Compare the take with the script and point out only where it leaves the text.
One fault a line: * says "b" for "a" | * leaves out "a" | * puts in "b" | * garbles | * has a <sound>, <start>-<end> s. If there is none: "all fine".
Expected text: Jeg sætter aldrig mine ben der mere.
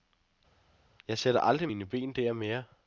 all fine